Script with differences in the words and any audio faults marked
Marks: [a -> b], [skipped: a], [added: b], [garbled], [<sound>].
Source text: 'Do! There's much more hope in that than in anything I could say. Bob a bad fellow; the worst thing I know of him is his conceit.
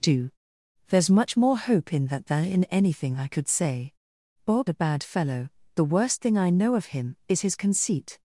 'Do! There's much more hope in that than in anything I could say. Bob a bad fellow; the worst thing I know of him is his conceit.